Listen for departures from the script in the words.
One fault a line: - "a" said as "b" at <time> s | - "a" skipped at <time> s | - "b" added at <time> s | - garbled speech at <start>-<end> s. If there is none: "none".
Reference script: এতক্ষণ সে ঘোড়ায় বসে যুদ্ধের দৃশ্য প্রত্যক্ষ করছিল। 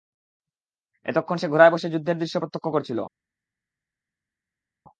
none